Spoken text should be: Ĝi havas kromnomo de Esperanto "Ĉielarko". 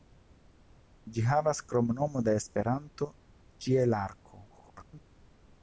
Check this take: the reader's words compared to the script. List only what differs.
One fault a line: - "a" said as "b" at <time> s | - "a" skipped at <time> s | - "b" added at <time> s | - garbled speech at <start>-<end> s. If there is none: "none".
- garbled speech at 4.5-5.1 s